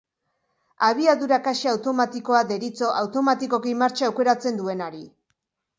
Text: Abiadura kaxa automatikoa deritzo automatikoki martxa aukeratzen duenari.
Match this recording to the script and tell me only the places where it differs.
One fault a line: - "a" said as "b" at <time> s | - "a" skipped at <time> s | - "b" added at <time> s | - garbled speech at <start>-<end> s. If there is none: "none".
none